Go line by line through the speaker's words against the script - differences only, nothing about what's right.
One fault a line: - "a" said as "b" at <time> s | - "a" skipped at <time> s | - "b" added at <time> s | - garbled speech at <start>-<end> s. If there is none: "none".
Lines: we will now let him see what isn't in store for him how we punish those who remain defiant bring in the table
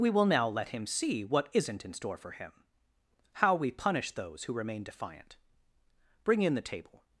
none